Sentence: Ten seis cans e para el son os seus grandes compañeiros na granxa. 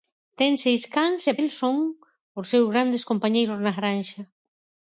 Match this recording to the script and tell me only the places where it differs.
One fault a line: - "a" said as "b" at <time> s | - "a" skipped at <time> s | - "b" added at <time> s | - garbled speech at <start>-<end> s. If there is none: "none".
- "para" skipped at 1.3 s